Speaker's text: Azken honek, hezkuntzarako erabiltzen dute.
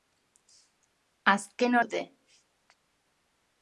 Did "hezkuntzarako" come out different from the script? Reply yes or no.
yes